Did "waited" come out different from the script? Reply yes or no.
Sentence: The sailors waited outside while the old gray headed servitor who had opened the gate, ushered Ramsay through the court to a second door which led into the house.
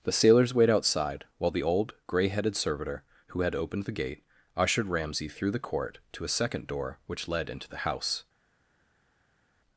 yes